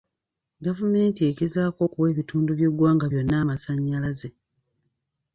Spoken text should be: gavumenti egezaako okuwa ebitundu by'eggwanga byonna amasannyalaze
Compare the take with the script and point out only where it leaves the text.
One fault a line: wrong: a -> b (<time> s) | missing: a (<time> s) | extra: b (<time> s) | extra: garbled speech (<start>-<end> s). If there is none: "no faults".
no faults